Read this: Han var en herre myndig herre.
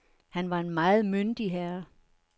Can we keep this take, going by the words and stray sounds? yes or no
no